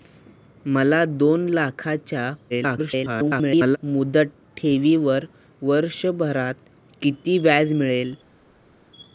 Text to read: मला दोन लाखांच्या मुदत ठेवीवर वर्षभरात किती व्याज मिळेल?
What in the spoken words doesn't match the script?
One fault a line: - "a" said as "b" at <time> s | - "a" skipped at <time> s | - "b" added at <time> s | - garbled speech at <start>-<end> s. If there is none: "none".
- garbled speech at 2.5-3.8 s